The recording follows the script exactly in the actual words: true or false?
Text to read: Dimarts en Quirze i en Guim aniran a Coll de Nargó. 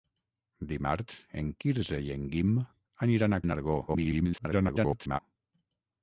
false